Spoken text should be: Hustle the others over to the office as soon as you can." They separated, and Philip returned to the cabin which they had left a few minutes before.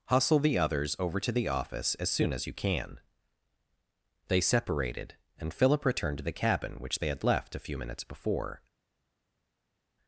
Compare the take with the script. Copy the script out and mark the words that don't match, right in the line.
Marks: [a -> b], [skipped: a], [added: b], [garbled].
Hustle the others over to the office as soon as you can." They separated, and Philip returned to the cabin which they had left a few minutes before.